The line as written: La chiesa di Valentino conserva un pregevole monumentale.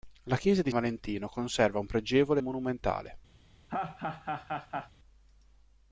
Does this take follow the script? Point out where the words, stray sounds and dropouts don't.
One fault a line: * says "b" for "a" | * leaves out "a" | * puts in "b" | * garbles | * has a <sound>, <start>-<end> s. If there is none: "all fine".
* has a laugh, 3.7-4.9 s